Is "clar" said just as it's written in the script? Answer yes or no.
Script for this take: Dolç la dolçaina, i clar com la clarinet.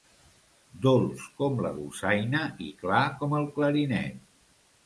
yes